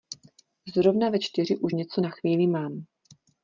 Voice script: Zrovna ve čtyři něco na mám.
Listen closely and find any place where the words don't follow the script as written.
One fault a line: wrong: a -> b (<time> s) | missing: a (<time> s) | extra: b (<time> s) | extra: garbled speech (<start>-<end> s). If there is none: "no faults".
extra: už (1.6 s)
extra: chvíli (2.1 s)